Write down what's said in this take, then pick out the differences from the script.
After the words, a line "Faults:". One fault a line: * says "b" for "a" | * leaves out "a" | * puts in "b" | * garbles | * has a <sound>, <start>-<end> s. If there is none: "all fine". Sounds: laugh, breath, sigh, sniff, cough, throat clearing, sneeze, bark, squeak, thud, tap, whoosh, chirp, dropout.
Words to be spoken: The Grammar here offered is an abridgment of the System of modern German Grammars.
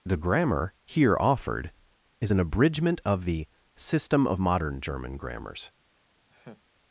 The Grammar here offered is an abridgment of the System of modern German Grammars.
Faults:
* has a laugh, 6.3-6.6 s